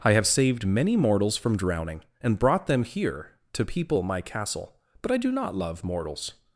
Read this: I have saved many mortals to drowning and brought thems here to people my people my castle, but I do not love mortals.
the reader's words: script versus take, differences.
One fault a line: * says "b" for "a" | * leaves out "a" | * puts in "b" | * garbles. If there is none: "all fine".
* says "from" for "to"
* says "them" for "thems"
* leaves out "people my"